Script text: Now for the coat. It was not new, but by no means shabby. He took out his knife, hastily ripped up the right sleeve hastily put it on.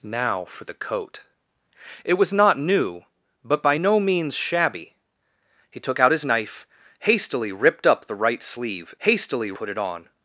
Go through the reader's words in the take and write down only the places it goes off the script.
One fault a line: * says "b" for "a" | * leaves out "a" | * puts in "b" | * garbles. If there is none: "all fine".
all fine